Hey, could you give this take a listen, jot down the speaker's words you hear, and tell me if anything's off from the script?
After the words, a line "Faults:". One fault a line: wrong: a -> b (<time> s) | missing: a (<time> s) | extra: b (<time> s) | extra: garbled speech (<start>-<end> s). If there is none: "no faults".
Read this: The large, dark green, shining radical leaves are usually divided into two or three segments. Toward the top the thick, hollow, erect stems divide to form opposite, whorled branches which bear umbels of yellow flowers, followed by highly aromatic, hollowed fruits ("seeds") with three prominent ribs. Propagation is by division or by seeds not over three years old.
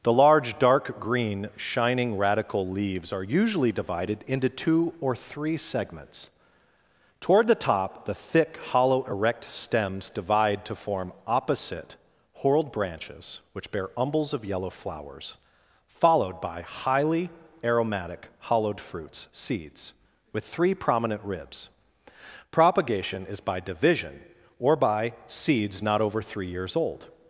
The large, dark green, shining radical leaves are usually divided into two or three segments. Toward the top the thick, hollow, erect stems divide to form opposite, whorled branches which bear umbels of yellow flowers, followed by highly aromatic, hollowed fruits ("seeds") with three prominent ribs. Propagation is by division or by seeds not over three years old.
Faults:
no faults